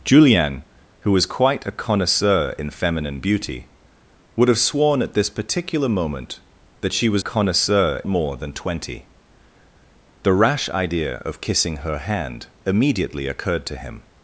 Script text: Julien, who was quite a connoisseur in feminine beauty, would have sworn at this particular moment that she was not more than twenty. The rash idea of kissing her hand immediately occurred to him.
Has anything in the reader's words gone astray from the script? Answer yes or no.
yes